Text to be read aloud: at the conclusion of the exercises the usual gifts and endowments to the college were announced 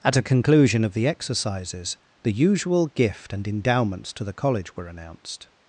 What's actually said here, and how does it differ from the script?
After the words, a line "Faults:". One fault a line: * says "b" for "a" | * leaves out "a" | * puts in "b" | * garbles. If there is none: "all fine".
at a conclusion of the exercises the usual gift and endowments to the college were announced
Faults:
* says "a" for "the"
* says "gift" for "gifts"